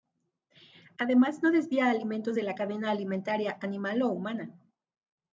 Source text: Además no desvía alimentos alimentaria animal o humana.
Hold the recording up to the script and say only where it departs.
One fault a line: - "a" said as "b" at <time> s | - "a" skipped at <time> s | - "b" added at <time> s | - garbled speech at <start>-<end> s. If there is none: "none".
- "de la cadena" added at 2.3 s